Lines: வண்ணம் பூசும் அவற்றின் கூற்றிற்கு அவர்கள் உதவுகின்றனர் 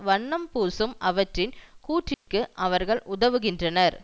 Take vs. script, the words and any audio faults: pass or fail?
fail